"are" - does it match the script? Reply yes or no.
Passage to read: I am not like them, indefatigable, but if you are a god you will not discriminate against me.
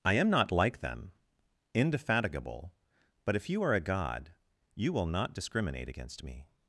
yes